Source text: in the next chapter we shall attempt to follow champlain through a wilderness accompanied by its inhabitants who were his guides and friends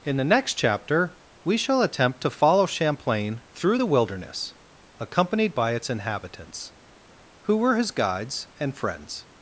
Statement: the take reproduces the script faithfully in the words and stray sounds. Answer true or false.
false